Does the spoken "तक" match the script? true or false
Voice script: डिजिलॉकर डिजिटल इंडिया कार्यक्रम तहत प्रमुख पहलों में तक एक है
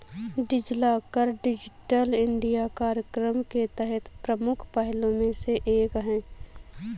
false